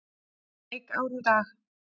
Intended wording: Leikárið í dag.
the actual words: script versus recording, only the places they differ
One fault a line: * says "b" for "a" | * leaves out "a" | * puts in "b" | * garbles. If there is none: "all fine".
all fine